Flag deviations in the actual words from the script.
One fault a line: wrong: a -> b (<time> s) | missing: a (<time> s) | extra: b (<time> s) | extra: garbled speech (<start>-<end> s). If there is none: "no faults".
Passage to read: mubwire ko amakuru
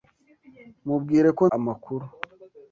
no faults